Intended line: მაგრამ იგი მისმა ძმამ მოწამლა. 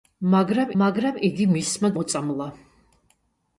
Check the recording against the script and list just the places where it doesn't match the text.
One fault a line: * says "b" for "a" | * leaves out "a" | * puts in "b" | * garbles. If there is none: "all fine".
* puts in "მაგრამ"
* leaves out "ძმამ"